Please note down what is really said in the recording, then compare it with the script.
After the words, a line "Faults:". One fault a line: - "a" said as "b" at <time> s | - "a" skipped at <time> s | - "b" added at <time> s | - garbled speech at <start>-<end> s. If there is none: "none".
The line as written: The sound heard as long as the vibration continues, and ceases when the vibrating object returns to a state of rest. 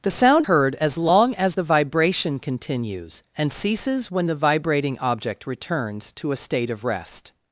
The sound heard as long as the vibration continues, and ceases when the vibrating object returns to a state of rest.
Faults:
none